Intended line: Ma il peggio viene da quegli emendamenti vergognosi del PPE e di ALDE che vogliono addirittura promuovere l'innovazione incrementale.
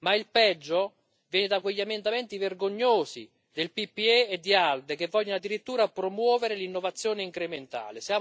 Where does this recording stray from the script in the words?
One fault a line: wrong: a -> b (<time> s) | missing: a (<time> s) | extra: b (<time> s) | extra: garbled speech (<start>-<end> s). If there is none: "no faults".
no faults